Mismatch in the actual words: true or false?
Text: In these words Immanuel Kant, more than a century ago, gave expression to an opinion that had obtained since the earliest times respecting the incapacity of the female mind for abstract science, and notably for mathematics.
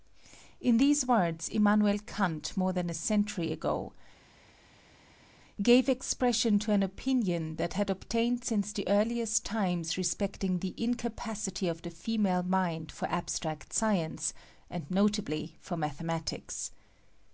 false